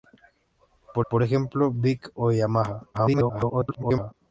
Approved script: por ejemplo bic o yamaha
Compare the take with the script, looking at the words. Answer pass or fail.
fail